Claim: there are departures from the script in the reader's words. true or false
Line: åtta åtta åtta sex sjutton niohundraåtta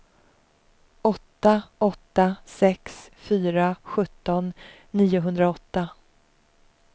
true